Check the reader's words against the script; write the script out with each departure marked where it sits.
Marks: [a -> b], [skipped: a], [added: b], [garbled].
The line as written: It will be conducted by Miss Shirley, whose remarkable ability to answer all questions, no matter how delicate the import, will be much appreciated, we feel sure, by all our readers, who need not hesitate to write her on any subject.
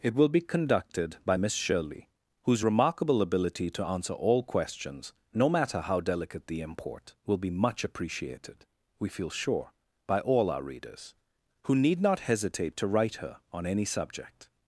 It will be conducted by Miss Shirley, whose remarkable ability to answer all questions, no matter how delicate the import, will be much appreciated, we feel sure, by all our readers, who need not hesitate to write her on any subject.